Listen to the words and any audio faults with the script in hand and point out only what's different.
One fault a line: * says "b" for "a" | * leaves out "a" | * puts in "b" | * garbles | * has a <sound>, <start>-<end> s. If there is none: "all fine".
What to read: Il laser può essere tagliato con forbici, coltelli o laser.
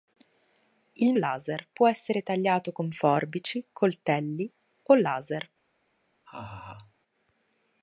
* has a laugh, 6.3-6.9 s